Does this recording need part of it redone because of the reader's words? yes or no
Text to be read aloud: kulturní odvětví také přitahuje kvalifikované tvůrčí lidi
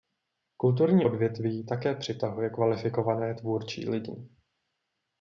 no